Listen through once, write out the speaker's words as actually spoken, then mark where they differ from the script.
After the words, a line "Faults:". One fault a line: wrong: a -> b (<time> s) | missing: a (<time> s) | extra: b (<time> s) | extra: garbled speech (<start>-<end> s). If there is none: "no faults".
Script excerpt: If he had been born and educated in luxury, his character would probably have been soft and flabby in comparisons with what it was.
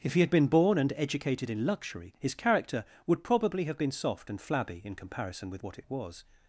If he had been born and educated in luxury, his character would probably have been soft and flabby in comparison with what it was.
Faults:
wrong: comparisons -> comparison (5.0 s)